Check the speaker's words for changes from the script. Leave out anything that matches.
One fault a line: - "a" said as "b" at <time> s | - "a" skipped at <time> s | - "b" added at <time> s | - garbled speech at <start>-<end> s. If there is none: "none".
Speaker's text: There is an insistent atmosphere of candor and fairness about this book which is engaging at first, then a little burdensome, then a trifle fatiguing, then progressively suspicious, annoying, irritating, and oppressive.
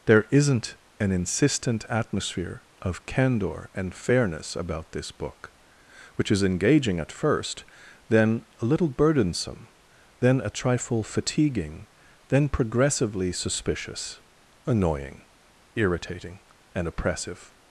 - "is" said as "isn't" at 0.3 s